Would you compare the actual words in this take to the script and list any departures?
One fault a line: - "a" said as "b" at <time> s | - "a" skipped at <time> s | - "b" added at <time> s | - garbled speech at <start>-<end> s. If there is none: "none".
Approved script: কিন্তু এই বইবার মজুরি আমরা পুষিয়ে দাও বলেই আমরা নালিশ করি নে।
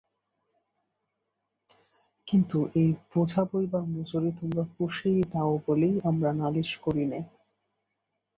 - "বোঝা" added at 3.1 s
- "আমরা" said as "তোমরা" at 4.4 s